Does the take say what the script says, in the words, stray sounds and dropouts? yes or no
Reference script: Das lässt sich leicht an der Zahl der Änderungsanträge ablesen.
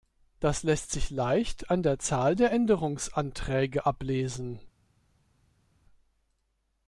yes